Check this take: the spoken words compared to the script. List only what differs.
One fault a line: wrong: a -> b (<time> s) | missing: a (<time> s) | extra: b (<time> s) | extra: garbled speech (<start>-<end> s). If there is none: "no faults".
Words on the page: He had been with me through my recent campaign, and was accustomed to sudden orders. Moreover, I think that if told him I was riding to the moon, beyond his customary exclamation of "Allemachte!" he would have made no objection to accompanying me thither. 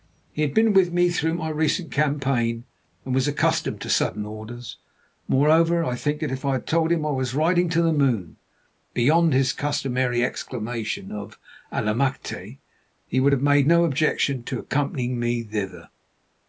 extra: I had (6.4 s)